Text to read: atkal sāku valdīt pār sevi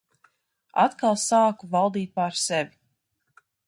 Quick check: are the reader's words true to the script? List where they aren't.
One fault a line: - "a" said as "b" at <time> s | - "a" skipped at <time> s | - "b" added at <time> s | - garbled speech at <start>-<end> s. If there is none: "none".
none